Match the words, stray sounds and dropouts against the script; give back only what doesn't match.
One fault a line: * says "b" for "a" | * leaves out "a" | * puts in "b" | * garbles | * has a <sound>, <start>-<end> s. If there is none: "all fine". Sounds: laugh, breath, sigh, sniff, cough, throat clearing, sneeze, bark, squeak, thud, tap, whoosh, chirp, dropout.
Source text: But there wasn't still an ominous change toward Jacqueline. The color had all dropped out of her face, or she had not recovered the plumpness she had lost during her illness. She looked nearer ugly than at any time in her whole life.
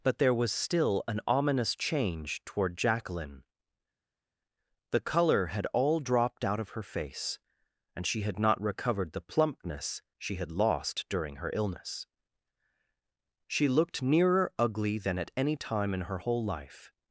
* says "was" for "wasn't"
* says "and" for "or"